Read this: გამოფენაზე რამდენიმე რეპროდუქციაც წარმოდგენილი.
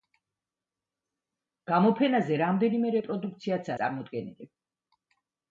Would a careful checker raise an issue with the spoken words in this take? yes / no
no